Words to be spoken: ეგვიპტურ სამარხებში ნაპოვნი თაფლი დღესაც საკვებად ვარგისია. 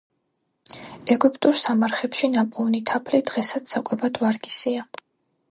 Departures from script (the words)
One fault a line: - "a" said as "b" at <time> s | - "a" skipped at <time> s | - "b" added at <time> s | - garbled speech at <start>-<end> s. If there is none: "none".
none